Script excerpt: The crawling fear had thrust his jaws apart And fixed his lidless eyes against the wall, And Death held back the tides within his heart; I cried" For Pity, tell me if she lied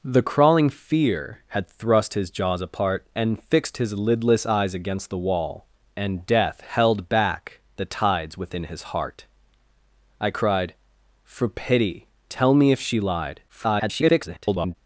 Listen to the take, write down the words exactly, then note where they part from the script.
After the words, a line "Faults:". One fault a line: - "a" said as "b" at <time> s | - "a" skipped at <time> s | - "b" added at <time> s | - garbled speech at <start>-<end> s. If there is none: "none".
The crawling fear had thrust his jaws apart And fixed his lidless eyes against the wall, And Death held back the tides within his heart; I cried" For Pity, tell me if she lied [garbled]
Faults:
- garbled speech at 13.5-14.8 s